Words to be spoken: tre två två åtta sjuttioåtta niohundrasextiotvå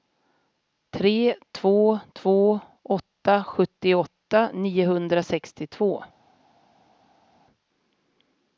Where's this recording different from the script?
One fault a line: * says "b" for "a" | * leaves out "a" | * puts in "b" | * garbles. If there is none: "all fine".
all fine